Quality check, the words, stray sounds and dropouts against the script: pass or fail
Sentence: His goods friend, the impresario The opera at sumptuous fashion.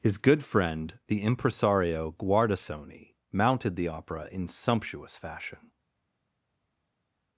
fail